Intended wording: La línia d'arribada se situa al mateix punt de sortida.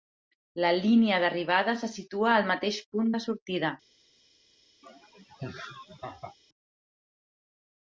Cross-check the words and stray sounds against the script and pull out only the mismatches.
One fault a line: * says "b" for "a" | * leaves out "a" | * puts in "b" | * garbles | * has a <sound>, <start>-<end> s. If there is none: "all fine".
* has a laugh, 4.8-6.4 s